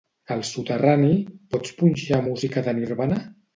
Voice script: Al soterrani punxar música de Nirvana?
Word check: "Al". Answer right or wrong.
right